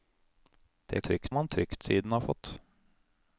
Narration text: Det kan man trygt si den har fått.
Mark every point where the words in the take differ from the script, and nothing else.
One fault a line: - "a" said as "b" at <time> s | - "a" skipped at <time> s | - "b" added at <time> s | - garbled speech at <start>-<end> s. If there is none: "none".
- "kan" said as "trygt" at 1.0 s